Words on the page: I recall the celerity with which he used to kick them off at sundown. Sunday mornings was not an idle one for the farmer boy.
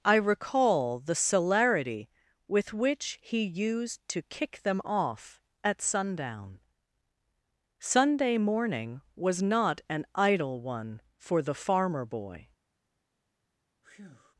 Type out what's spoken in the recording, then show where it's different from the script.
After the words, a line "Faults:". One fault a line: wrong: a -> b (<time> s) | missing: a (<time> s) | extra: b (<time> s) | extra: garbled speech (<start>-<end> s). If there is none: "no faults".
I recall the celerity with which he used to kick them off at sundown. Sunday morning was not an idle one for the farmer boy.
Faults:
wrong: mornings -> morning (8.4 s)